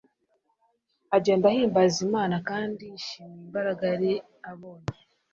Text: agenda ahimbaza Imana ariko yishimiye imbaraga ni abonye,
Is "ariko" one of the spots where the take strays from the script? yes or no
yes